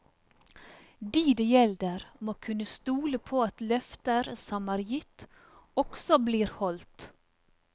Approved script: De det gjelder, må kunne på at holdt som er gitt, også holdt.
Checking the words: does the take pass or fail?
fail